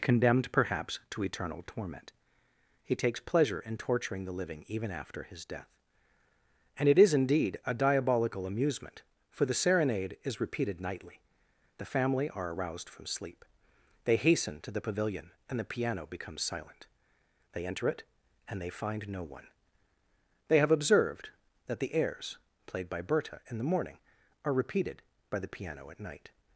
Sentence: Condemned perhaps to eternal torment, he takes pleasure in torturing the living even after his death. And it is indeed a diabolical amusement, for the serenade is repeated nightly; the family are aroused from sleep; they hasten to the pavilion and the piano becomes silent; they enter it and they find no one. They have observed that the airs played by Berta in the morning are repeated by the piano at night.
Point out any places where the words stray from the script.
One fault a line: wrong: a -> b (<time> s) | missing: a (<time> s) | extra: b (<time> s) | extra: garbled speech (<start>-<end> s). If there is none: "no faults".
no faults